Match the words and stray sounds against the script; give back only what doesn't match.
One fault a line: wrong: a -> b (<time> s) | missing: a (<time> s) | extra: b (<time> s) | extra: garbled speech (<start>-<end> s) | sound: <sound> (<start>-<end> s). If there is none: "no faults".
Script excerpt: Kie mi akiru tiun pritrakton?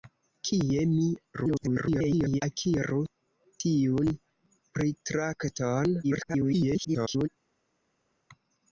extra: garbled speech (1.3-2.4 s)
extra: garbled speech (6.0-7.3 s)